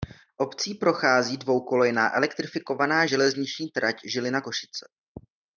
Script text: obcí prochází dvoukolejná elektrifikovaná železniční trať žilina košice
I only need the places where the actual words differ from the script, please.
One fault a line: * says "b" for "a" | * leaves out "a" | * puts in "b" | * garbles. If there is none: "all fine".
all fine